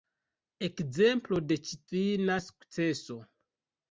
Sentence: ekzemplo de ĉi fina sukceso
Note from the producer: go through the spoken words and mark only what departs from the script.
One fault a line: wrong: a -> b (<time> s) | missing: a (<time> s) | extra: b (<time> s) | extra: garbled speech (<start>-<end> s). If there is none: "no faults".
no faults